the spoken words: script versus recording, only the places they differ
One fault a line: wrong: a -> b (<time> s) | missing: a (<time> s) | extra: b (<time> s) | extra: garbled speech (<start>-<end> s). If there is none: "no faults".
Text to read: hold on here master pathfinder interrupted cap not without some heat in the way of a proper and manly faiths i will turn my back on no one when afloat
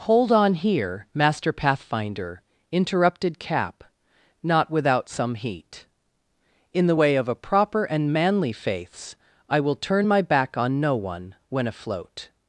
no faults